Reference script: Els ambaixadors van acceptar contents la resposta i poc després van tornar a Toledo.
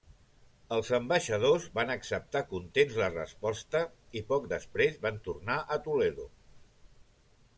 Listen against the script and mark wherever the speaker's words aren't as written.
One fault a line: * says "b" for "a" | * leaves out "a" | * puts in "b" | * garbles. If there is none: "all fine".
all fine